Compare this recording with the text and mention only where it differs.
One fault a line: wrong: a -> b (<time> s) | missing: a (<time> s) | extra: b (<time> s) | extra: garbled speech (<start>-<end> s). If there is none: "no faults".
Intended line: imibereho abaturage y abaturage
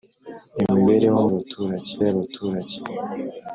no faults